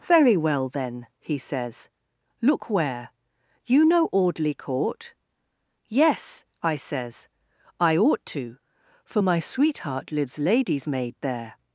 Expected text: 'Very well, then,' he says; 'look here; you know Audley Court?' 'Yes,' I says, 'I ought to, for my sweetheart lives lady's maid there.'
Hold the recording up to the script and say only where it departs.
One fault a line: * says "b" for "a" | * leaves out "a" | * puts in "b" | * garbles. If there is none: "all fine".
* says "where" for "here"